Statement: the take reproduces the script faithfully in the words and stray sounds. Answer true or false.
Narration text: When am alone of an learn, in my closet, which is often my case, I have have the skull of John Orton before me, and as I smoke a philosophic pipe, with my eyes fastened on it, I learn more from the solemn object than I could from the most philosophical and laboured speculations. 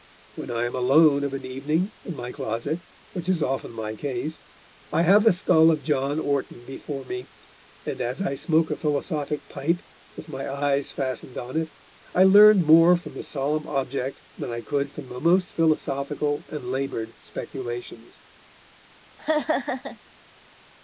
false